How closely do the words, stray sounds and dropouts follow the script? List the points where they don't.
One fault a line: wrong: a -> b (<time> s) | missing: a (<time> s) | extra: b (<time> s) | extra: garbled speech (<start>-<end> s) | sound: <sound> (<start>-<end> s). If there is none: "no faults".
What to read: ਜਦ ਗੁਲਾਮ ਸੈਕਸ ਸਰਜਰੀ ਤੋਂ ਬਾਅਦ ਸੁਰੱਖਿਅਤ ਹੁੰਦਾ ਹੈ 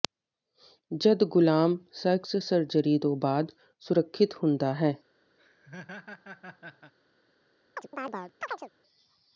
sound: laugh (5.4-6.9 s)
sound: chirp (7.8-8.7 s)